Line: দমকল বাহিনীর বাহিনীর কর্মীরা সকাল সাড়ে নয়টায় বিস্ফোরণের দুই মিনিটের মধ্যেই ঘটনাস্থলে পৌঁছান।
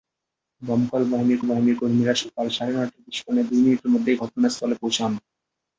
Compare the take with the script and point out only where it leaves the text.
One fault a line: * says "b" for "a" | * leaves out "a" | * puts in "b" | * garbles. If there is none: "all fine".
all fine